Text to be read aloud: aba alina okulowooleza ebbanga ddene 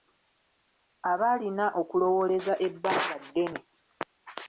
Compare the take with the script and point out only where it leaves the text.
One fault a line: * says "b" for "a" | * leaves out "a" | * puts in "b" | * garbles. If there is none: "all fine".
all fine